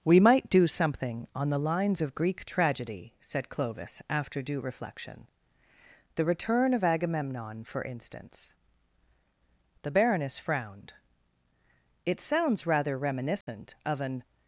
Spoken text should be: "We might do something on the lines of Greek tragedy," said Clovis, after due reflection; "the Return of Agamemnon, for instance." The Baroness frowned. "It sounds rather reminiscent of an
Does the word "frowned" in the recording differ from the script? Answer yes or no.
no